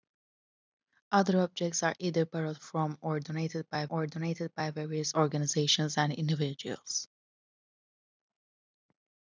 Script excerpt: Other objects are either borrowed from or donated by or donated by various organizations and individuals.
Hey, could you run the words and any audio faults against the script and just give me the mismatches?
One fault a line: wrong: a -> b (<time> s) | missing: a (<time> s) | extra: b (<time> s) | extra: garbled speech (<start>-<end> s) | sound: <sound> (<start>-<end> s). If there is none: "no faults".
no faults